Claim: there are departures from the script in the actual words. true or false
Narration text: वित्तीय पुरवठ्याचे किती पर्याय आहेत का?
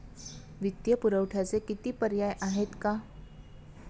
false